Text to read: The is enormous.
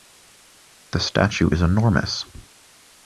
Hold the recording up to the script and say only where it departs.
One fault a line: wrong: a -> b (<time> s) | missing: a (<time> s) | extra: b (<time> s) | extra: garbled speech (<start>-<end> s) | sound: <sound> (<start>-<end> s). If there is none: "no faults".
extra: statue (1.0 s)